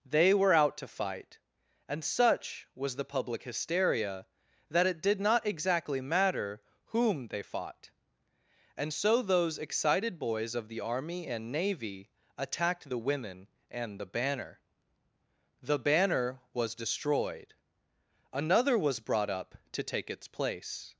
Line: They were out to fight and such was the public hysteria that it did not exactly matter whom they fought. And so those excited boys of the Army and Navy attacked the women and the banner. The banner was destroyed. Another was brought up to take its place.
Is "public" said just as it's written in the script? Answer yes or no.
yes